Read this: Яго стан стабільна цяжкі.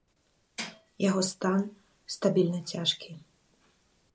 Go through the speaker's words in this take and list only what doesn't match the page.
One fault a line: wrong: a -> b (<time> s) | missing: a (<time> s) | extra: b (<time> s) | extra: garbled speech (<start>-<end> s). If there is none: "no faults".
no faults